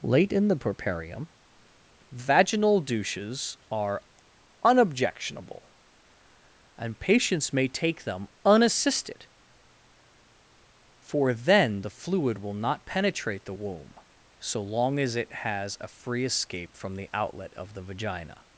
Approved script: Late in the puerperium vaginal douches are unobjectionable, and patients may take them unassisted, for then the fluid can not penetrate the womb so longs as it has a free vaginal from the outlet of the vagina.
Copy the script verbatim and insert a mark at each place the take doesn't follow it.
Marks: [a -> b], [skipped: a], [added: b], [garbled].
Late in the puerperium vaginal douches are unobjectionable, and patients may take them unassisted, for then the fluid [can -> will] not penetrate the womb so [longs -> long] as it has a free [vaginal -> escape] from the outlet of the vagina.